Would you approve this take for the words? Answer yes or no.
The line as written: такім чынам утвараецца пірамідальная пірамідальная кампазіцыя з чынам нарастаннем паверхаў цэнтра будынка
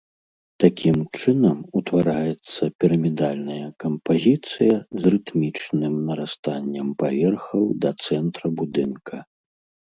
no